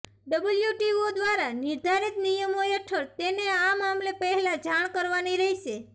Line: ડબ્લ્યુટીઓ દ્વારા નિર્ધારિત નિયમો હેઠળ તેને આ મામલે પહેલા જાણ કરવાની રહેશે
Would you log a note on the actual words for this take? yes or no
no